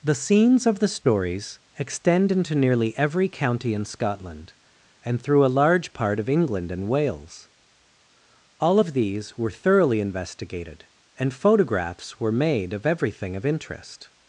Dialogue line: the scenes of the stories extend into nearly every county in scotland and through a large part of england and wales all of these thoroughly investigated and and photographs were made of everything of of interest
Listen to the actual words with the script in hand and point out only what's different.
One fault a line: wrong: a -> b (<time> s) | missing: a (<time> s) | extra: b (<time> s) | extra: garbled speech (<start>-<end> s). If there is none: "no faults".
extra: were (9.4 s)
missing: and (11.3 s)
missing: of (13.5 s)